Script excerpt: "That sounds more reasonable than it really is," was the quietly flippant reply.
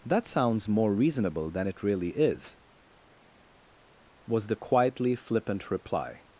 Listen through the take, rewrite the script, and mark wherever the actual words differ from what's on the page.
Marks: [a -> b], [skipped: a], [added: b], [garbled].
"That sounds more reasonable than it really is," was the quietly flippant reply.